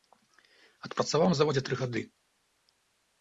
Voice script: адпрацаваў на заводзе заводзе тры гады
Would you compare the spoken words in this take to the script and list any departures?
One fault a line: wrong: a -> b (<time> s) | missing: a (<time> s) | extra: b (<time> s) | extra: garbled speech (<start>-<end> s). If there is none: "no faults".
missing: заводзе (1.6 s)